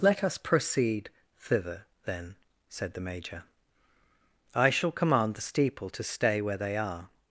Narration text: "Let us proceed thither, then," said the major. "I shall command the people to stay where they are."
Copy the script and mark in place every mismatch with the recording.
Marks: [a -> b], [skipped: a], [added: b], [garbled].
"Let us proceed thither, then," said the major. "I shall command the [people -> steeple] to stay where they are."